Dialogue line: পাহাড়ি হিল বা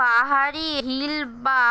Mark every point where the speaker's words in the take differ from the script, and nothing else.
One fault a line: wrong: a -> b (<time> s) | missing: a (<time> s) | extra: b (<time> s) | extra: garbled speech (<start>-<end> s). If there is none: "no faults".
no faults